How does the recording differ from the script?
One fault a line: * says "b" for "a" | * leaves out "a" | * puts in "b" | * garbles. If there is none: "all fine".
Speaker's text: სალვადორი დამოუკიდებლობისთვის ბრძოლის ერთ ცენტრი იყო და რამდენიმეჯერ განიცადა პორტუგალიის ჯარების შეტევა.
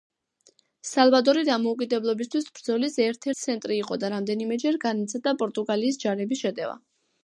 all fine